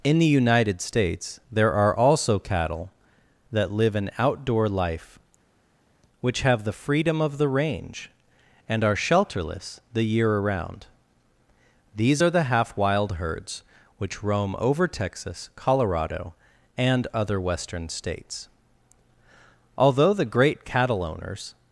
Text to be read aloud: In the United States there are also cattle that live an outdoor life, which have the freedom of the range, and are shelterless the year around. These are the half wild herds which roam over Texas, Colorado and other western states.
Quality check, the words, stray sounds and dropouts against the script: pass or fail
fail